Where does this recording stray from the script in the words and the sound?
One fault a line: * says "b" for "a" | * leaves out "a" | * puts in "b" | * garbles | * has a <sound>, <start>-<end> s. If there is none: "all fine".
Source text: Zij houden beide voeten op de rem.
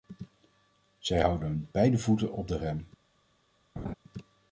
* has a laugh, 3.8-3.9 s